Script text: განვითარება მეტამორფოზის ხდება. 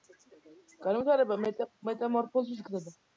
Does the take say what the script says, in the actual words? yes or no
yes